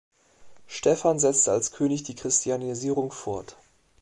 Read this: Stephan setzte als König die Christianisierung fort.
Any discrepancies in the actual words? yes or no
no